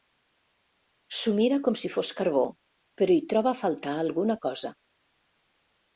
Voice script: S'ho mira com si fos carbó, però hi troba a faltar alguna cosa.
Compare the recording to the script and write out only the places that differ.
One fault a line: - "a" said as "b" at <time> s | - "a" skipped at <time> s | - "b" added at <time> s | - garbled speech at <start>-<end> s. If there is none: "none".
none